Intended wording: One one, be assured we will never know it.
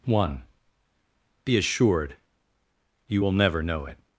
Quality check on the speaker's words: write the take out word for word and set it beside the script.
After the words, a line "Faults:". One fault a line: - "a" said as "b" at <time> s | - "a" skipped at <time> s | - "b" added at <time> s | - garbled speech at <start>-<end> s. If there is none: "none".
One, be assured you will never know it.
Faults:
- "one" skipped at 0.4 s
- "we" said as "you" at 3.1 s